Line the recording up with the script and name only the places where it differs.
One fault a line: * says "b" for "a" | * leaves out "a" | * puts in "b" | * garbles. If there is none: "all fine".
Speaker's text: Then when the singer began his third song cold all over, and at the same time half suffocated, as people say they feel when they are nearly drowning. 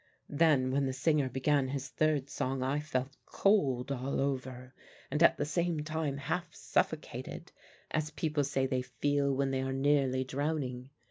* puts in "I felt"